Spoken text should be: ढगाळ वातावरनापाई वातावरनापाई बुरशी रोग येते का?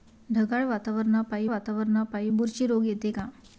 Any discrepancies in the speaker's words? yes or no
no